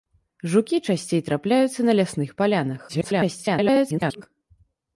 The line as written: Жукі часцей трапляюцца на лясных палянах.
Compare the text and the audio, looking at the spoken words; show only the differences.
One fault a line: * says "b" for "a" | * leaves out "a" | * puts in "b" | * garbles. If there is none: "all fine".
* garbles